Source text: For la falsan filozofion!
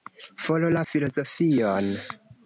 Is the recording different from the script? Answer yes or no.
yes